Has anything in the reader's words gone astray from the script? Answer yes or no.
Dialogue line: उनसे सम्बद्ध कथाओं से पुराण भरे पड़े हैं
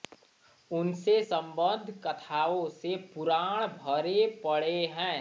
no